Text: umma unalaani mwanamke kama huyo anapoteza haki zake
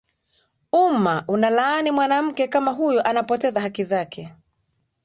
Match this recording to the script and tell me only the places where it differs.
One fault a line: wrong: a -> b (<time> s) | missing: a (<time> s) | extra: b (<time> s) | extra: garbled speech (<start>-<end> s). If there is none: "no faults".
no faults